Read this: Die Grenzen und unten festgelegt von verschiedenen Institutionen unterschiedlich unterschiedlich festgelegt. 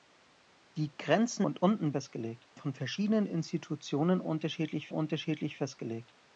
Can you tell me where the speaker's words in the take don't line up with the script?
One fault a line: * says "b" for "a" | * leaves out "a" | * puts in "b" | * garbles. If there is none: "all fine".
all fine